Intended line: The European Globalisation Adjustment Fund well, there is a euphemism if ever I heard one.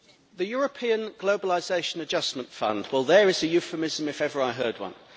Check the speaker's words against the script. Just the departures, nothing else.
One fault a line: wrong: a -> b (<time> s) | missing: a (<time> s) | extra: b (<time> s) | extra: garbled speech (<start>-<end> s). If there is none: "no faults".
no faults